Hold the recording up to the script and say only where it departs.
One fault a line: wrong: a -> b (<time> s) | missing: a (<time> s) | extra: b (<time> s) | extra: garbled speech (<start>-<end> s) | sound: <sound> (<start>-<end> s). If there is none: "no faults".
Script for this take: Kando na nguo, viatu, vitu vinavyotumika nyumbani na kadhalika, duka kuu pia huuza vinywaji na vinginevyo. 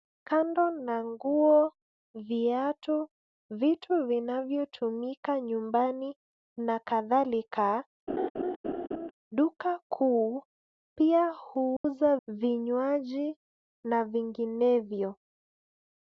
sound: laugh (8.1-9.1 s)
sound: dropout (11.8-11.8 s)